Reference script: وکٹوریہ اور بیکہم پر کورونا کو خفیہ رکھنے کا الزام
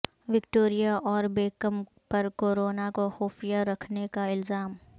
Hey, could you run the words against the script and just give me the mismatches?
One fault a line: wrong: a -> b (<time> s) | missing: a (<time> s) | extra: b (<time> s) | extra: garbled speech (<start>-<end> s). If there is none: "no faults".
no faults